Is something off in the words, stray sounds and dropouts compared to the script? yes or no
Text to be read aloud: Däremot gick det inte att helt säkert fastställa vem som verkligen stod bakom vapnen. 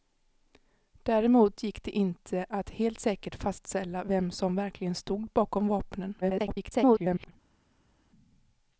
yes